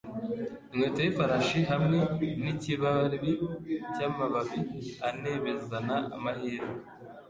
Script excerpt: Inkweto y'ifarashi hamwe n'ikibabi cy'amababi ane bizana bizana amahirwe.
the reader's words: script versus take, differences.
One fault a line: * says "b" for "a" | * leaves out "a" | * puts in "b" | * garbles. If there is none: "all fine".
* leaves out "bizana"